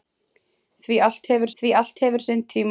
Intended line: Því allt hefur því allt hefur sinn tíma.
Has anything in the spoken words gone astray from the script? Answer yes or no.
no